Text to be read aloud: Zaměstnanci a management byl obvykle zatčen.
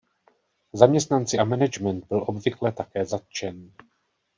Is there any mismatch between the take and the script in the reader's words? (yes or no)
yes